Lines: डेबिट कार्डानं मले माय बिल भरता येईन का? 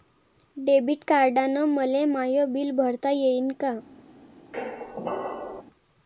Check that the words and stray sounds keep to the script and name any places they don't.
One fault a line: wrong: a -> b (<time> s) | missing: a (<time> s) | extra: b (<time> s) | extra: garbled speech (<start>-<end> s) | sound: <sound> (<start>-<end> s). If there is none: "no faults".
sound: squeak (4.5-5.6 s)